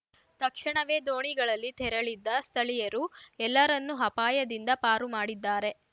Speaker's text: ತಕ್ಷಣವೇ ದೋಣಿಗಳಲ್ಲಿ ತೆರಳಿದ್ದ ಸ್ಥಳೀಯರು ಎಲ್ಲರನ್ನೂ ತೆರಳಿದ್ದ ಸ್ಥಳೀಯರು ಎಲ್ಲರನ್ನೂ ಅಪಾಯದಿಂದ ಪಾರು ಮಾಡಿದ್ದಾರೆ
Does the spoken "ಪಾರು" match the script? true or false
true